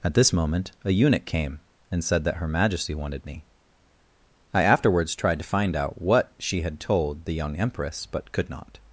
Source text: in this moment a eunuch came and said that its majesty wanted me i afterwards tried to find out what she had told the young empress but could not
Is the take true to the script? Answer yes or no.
no